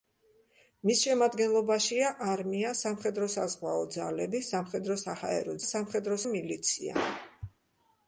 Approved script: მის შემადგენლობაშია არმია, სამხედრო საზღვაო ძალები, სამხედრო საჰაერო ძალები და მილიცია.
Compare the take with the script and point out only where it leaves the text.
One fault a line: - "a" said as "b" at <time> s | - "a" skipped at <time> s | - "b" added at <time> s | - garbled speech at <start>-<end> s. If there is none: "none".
- "ძალები" said as "სამხედრო" at 5.7 s